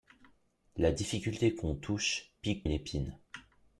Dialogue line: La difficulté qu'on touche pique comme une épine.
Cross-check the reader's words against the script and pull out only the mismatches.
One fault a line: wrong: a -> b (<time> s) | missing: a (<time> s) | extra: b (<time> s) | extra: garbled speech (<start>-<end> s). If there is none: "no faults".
missing: comme (2.6 s)